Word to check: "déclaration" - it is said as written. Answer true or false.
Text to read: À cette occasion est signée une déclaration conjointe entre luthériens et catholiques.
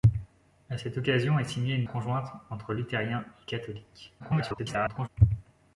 false